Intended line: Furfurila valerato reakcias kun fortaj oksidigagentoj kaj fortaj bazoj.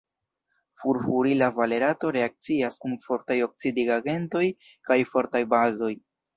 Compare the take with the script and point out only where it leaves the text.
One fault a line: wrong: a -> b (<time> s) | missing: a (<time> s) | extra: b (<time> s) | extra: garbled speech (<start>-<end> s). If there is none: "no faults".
no faults